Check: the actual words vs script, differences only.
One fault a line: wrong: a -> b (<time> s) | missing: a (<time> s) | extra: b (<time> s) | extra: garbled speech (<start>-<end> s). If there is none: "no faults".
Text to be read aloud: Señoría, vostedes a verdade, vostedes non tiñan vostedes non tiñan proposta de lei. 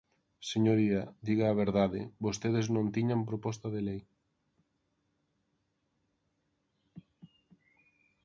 wrong: vostedes -> diga (1.3 s)
missing: vostedes non tiñan (3.3 s)